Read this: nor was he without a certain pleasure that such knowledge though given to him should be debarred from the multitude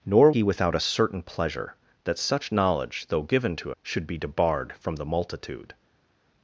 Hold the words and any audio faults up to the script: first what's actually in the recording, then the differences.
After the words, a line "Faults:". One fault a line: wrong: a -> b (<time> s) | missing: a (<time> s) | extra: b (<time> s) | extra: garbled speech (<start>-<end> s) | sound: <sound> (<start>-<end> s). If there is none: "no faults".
nor he without a certain pleasure that such knowledge though given to should be debarred from the multitude
Faults:
missing: was (0.3 s)
missing: him (3.7 s)